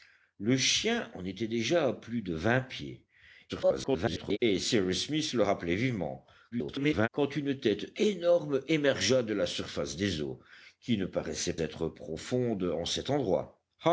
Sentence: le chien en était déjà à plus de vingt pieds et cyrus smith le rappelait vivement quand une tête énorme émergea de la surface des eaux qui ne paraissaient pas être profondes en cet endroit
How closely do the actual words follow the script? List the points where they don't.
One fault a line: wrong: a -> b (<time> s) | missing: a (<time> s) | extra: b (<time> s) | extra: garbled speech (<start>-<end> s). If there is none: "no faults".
extra: garbled speech (3.5-4.4 s)
extra: garbled speech (6.5-7.1 s)
missing: pas (11.6 s)